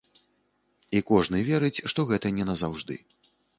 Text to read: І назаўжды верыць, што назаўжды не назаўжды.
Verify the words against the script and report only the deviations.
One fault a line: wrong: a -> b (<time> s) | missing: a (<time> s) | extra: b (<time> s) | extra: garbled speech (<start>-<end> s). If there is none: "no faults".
wrong: назаўжды -> кожны (1.1 s)
wrong: назаўжды -> гэта (2.1 s)